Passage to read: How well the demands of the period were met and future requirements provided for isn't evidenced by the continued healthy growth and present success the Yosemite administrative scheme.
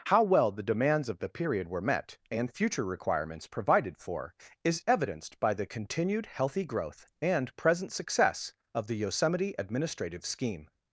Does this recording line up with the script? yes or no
no